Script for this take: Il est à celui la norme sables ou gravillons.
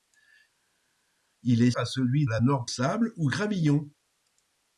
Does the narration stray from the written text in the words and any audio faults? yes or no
no